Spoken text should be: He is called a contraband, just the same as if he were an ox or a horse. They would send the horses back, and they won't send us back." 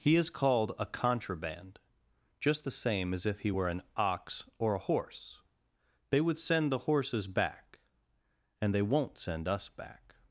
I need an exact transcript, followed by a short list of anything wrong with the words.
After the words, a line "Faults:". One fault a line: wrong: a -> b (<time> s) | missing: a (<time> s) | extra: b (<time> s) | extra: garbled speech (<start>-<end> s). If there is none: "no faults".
He is called a contraband, just the same as if he were an ox or a horse. They would send the horses back, and they won't send us back."
Faults:
no faults